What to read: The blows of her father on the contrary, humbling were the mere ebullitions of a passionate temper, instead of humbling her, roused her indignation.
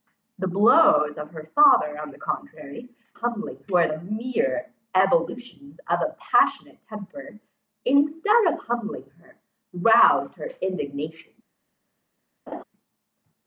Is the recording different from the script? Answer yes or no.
no